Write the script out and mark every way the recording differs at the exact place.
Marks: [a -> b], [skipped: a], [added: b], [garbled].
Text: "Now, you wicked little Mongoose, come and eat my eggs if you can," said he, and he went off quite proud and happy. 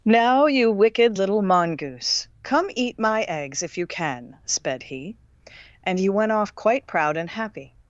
"Now, you wicked little Mongoose, come [skipped: and] eat my eggs if you can," [said -> sped] he, and he went off quite proud and happy.